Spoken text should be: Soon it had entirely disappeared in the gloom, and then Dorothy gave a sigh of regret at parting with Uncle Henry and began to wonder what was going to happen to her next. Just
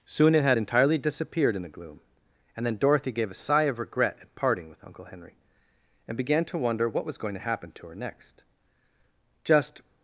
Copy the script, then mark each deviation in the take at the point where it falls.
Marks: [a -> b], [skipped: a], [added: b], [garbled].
Soon it had entirely disappeared in the gloom, and then Dorothy gave a sigh of regret at parting with Uncle Henry and began to wonder what was going to happen to her next. Just